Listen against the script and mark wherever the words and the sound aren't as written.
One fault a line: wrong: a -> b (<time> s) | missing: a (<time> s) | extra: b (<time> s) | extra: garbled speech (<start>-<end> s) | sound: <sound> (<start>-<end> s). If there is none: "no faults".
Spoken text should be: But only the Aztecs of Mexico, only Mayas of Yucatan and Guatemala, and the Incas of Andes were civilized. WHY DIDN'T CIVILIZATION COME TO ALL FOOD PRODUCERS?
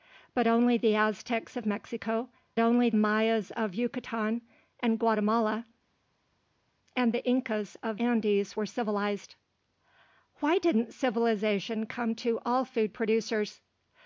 no faults